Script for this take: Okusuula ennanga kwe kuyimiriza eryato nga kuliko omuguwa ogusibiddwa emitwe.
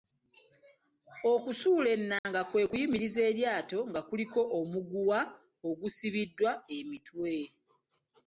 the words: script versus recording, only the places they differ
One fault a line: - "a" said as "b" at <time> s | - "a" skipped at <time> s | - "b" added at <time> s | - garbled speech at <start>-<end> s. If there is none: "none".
none